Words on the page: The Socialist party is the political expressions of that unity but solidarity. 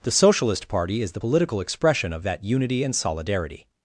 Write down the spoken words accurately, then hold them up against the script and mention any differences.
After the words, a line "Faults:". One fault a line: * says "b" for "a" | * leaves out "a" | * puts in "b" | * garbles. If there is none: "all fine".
The Socialist party is the political expression of that unity and solidarity.
Faults:
* says "expression" for "expressions"
* says "and" for "but"